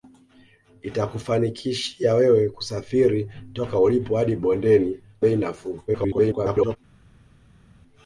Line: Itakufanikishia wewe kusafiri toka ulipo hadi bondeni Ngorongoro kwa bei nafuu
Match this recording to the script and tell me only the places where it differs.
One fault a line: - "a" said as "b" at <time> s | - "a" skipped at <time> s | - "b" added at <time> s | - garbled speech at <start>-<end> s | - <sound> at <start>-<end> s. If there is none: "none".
- "Ngorongoro kwa" skipped at 5.0 s
- garbled speech at 5.9-6.8 s